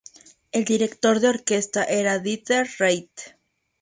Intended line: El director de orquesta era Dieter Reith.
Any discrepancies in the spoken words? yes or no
no